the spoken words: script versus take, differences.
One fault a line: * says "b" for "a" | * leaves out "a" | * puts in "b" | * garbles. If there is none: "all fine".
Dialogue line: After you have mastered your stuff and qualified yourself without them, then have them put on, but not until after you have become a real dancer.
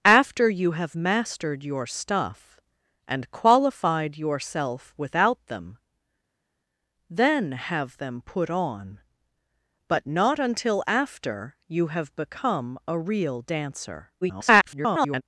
* garbles